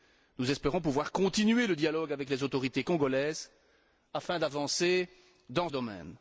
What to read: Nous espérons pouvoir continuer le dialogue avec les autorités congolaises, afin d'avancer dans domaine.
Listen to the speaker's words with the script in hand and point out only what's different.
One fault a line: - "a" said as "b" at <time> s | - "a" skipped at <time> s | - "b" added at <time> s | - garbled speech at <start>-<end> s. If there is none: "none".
none